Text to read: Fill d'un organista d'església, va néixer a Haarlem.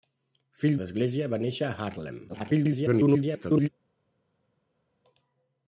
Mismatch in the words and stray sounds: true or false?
true